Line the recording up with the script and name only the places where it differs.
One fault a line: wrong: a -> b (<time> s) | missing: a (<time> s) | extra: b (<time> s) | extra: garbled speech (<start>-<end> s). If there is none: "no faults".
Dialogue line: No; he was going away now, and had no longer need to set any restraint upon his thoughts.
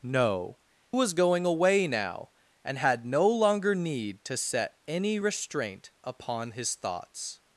missing: he (0.6 s)